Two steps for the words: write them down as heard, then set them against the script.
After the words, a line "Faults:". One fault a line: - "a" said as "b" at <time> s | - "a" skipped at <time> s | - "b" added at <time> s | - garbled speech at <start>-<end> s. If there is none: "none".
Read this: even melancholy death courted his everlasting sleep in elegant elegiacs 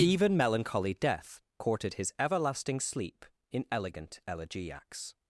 even melancholy death courted his everlasting sleep in elegant elegiacs
Faults:
none